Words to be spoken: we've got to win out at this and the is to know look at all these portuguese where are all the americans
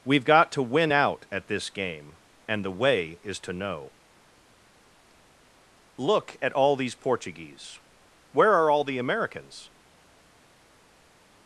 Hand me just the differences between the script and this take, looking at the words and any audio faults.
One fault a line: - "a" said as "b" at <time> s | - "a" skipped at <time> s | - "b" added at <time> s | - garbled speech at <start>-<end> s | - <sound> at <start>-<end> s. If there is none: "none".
- "game" added at 1.7 s
- "way" added at 2.7 s